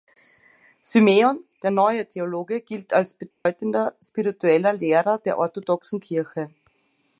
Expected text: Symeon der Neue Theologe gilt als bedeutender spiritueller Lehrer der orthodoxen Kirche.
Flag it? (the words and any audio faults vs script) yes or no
yes